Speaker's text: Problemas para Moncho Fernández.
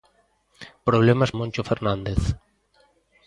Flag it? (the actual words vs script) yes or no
yes